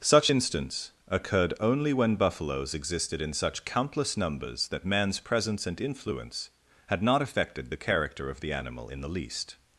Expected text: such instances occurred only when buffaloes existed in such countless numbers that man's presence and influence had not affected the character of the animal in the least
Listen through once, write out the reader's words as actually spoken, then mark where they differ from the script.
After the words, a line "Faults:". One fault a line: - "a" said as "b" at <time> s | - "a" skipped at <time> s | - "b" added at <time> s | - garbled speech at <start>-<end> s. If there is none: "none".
such instance occurred only when buffaloes existed in such countless numbers that man's presence and influence had not affected the character of the animal in the least
Faults:
- "instances" said as "instance" at 0.3 s